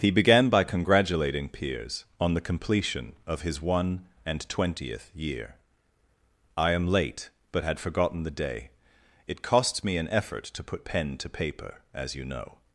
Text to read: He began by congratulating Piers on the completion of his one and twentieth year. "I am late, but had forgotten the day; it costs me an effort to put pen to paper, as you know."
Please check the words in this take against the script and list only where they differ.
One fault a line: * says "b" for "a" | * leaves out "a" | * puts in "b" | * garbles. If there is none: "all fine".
all fine